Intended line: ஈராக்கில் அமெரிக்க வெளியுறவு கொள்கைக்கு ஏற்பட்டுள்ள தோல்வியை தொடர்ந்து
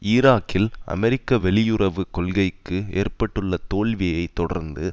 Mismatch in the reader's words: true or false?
false